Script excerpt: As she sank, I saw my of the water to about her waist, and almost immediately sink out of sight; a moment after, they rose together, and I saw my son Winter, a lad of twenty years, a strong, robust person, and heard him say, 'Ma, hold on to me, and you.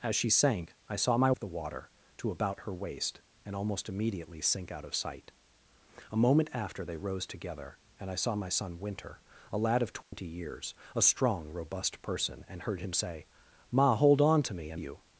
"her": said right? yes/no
yes